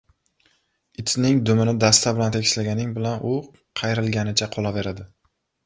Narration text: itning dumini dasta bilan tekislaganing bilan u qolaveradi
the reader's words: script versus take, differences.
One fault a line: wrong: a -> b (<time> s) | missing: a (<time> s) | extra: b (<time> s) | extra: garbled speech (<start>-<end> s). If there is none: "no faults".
extra: qayrilganicha (3.8 s)